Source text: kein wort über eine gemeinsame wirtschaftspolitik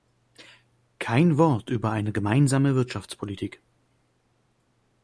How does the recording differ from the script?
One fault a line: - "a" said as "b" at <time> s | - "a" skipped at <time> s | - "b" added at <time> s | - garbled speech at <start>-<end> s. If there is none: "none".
none